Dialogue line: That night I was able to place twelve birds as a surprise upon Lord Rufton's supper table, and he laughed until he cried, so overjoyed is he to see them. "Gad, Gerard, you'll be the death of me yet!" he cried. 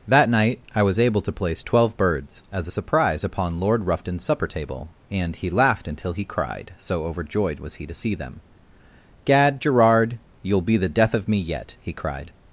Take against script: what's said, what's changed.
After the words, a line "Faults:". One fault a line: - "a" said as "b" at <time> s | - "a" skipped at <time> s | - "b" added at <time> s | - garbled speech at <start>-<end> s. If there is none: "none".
That night I was able to place twelve birds as a surprise upon Lord Rufton's supper table, and he laughed until he cried, so overjoyed was he to see them. "Gad, Gerard, you'll be the death of me yet!" he cried.
Faults:
- "is" said as "was" at 7.6 s